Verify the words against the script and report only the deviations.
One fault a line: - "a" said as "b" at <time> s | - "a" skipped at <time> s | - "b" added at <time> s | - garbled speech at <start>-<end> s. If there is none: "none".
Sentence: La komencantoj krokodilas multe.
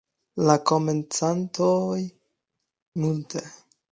- "krokodilas" skipped at 2.0 s